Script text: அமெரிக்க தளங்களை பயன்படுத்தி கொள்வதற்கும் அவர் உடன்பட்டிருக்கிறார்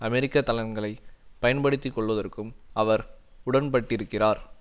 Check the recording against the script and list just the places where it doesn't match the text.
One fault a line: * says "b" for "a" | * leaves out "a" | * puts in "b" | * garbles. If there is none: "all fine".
all fine